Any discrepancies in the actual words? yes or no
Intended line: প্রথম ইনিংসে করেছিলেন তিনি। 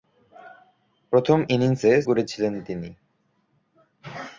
no